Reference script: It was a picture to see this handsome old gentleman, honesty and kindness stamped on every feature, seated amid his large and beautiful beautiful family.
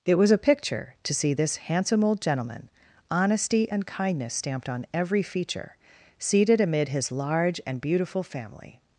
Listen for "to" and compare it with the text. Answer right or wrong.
right